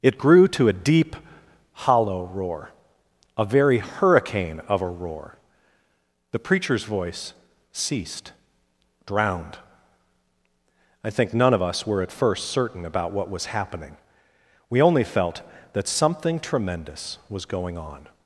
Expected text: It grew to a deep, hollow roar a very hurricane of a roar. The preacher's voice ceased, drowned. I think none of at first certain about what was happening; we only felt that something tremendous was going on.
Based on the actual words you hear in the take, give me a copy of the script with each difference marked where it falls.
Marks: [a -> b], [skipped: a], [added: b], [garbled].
It grew to a deep, hollow roar a very hurricane of a roar. The preacher's voice ceased, drowned. I think none of [added: us were] at first certain about what was happening; we only felt that something tremendous was going on.